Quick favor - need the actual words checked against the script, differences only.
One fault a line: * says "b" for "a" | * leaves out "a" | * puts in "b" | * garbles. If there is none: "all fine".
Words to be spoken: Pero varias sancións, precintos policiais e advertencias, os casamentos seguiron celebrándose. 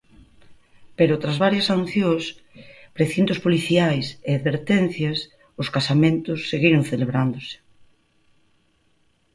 * puts in "tras"